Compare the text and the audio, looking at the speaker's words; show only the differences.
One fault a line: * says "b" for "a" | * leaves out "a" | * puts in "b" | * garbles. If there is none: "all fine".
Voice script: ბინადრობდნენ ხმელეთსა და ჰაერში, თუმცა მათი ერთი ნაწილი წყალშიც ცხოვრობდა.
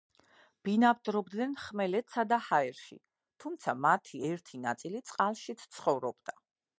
all fine